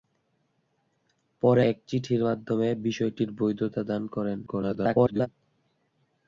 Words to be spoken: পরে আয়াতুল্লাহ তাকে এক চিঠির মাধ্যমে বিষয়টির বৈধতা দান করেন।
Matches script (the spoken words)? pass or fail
fail